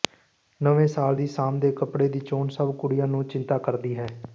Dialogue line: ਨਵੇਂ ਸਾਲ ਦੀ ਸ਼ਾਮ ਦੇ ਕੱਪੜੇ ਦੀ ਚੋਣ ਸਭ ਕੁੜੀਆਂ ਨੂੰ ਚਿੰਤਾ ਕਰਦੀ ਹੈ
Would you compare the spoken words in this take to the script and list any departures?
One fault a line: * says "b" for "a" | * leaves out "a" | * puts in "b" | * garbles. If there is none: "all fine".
all fine